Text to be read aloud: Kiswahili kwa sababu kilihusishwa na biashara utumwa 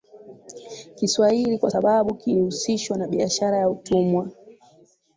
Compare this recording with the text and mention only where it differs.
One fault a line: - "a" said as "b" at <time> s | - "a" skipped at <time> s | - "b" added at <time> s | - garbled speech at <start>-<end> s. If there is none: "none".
- "ya" added at 3.6 s